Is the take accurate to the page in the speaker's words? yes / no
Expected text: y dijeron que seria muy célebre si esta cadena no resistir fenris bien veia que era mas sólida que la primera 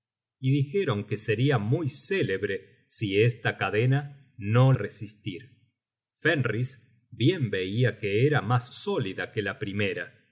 yes